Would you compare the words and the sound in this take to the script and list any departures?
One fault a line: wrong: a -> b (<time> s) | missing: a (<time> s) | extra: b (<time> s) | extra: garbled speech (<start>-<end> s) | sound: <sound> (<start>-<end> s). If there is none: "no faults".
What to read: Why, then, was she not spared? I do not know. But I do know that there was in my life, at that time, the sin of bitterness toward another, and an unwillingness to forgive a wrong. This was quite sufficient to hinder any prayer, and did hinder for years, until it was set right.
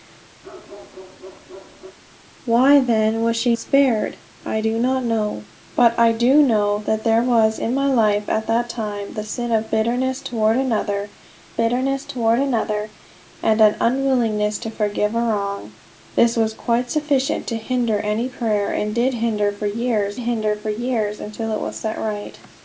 sound: bark (0.4-2.0 s)
missing: not (3.5 s)
extra: bitterness toward another (11.6 s)
extra: hinder for years (20.2 s)